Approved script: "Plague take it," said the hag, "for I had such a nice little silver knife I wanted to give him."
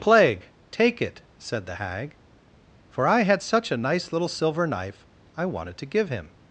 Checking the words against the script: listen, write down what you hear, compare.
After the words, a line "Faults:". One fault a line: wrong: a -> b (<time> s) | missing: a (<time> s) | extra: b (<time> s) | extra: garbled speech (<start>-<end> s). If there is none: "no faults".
"Plague take it," said the hag, "for I had such a nice little silver knife I wanted to give him."
Faults:
no faults